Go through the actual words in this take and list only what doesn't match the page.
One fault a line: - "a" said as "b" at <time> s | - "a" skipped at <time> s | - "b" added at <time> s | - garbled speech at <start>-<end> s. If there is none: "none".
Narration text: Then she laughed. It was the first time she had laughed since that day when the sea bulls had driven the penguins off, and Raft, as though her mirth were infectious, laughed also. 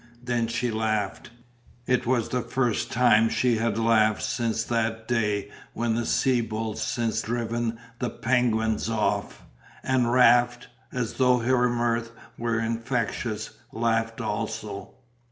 - "had" said as "since" at 6.8 s